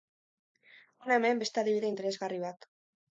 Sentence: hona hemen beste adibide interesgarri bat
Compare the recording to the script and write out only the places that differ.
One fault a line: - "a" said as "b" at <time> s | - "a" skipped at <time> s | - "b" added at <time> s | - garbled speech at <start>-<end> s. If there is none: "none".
none